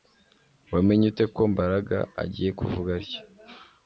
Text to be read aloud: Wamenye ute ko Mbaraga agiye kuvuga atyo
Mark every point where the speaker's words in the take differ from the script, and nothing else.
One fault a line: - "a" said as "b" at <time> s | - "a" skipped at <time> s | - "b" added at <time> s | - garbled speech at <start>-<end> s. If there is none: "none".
none